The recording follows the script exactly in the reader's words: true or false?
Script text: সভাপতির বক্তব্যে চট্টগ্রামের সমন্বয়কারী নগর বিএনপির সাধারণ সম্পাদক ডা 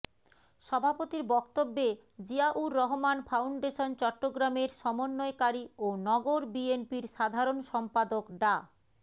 false